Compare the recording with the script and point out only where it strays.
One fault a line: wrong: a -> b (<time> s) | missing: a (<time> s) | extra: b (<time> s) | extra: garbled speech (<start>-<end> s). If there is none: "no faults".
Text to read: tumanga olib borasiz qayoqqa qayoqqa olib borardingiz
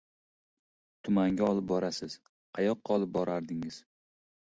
missing: qayoqqa (3.0 s)